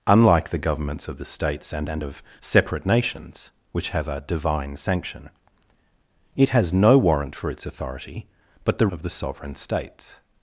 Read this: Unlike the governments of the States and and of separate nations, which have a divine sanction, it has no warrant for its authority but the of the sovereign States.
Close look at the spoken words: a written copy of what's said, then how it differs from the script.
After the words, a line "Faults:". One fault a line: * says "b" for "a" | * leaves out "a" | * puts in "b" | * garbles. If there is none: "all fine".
Unlike the governments of the States and and of separate nations, which have a divine sanction, it has no warrant for its authority but the of the sovereign States.
Faults:
all fine